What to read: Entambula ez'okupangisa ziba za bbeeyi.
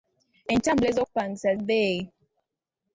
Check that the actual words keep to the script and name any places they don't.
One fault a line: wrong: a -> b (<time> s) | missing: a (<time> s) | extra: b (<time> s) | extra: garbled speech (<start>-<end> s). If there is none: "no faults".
missing: ziba za (1.5 s)